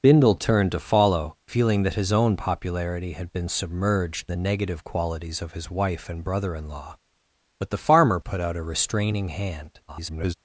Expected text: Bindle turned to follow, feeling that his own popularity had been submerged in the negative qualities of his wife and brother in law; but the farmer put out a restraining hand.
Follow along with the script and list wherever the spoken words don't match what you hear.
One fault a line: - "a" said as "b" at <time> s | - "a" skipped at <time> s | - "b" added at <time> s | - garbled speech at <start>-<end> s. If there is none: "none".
- "in" skipped at 4.3 s
- garbled speech at 9.9-10.3 s